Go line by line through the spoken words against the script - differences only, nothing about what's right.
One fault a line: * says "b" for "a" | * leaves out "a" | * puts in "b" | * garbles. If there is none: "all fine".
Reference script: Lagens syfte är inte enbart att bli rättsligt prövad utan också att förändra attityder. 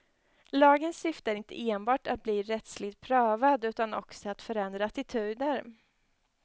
all fine